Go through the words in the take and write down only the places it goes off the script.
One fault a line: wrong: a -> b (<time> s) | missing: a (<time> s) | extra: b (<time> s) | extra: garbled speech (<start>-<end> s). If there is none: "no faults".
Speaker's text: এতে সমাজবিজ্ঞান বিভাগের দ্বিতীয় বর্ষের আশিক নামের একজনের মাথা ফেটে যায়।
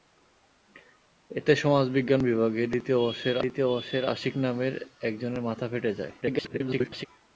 extra: দ্বিতীয় বর্ষের (3.4 s)
extra: garbled speech (6.2-7.1 s)